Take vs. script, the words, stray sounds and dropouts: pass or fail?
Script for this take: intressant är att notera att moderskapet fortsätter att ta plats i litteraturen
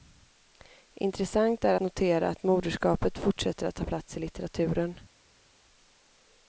fail